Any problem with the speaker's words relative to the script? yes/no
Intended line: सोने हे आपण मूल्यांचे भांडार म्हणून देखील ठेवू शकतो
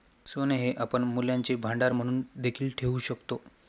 no